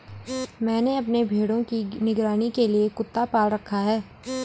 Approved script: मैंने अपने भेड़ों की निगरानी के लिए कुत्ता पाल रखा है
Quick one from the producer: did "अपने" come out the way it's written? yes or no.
yes